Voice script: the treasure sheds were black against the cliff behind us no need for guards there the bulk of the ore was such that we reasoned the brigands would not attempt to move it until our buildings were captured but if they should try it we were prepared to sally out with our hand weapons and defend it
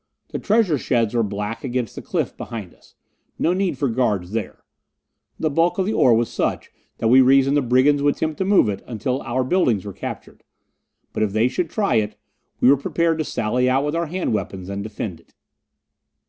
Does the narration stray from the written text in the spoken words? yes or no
yes